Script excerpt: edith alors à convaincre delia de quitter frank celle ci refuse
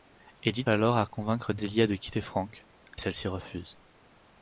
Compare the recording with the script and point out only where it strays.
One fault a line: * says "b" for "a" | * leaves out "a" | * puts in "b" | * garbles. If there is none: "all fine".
all fine